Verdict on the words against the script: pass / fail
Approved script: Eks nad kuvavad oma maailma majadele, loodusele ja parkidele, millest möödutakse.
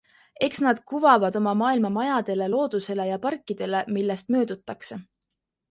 pass